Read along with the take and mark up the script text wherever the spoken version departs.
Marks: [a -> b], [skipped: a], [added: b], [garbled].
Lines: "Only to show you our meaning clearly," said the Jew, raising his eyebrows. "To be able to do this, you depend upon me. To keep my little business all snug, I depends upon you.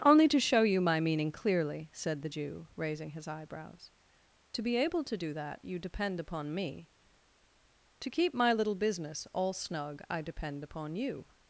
"Only to show you [our -> my] meaning clearly," said the Jew, raising his eyebrows. "To be able to do [this, -> that] you depend upon me. To keep my little business all snug, I [depends -> depend] upon you.